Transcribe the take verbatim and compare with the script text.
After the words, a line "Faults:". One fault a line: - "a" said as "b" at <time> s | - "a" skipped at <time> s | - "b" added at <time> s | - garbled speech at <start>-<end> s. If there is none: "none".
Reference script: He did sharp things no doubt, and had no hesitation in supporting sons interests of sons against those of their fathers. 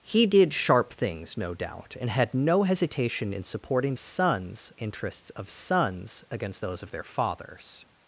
He did sharp things no doubt, and had no hesitation in supporting sons interests of sons against those of their fathers.
Faults:
none